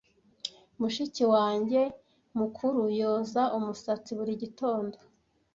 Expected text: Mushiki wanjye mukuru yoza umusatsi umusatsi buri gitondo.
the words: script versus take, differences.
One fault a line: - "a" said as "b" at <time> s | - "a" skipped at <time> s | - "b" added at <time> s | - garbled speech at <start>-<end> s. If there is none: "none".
- "umusatsi" skipped at 4.1 s